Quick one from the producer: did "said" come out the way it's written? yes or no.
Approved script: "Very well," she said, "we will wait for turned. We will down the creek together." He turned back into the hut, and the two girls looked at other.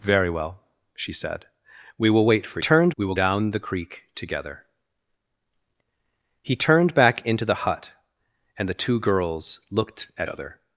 yes